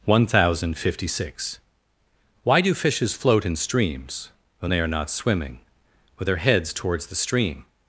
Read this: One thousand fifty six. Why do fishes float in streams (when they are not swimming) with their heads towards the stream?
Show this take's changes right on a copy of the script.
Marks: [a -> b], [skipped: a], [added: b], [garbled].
One thousand fifty six. Why do fishes float in streams (when they are not swimming) with their heads towards the stream?